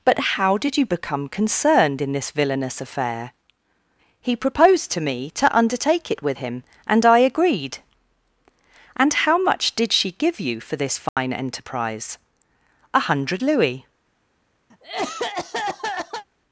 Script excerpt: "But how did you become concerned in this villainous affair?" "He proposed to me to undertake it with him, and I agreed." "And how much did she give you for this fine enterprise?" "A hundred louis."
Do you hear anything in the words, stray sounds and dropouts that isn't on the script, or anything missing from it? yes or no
yes